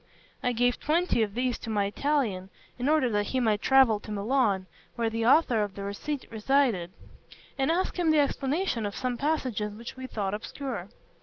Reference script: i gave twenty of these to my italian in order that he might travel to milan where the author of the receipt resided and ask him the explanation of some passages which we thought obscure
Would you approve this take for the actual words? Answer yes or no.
yes